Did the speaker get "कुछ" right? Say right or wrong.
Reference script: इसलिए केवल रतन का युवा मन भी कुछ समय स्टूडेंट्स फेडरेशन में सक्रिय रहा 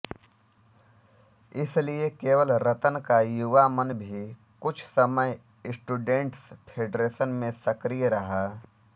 right